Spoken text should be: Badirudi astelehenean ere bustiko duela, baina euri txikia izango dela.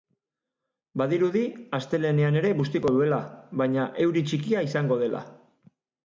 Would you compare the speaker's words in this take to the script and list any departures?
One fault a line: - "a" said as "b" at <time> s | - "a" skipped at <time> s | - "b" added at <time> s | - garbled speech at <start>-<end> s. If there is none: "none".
none